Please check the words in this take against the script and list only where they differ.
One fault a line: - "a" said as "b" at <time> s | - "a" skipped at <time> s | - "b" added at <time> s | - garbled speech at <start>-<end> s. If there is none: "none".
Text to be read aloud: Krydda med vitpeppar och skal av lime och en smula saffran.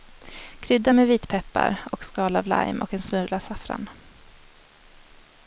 none